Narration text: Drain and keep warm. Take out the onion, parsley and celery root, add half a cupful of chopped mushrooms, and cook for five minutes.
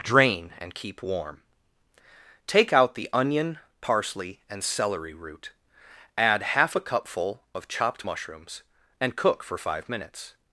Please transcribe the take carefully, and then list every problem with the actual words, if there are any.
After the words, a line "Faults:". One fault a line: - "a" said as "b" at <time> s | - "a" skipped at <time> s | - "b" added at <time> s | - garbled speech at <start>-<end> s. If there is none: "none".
Drain and keep warm. Take out the onion, parsley and celery root, add half a cupful of chopped mushrooms, and cook for five minutes.
Faults:
none